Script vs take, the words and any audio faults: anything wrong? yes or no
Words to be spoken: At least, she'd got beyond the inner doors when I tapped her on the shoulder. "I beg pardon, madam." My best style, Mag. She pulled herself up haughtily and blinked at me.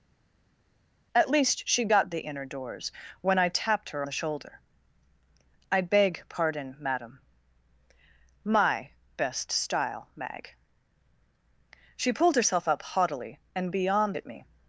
yes